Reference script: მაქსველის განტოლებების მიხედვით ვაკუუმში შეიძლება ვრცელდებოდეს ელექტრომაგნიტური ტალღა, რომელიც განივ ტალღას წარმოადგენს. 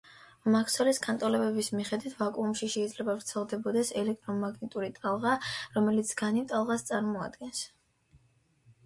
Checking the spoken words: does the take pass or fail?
pass